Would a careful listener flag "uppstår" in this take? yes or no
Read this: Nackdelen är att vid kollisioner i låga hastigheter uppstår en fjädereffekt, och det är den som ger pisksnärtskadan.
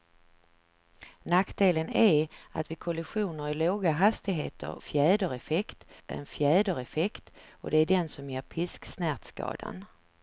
yes